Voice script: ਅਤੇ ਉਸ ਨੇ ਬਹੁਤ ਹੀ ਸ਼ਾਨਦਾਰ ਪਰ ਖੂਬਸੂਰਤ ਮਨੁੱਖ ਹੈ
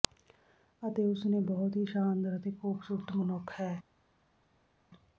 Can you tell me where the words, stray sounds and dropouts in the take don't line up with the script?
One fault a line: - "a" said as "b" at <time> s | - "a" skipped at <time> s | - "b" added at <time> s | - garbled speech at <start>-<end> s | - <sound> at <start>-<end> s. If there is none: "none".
- "ਪਰ" said as "ਅਤੇ" at 2.4 s